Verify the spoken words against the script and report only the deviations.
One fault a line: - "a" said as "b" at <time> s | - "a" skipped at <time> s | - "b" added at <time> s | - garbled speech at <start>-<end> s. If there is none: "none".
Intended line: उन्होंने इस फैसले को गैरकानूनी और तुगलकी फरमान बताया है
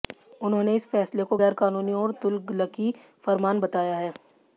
none